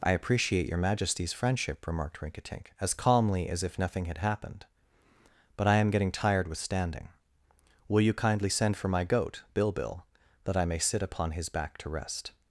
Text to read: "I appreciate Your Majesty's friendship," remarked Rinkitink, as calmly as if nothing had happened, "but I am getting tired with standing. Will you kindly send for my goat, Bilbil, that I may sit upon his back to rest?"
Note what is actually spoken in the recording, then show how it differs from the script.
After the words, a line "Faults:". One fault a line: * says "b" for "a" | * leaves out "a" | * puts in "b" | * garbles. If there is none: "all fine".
"I appreciate Your Majesty's friendship," remarked Rinkitink, as calmly as if nothing had happened, "but I am getting tired with standing. Will you kindly send for my goat, Bilbil, that I may sit upon his back to rest?"
Faults:
all fine